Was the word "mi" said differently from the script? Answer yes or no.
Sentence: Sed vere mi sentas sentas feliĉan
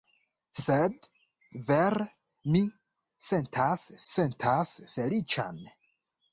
no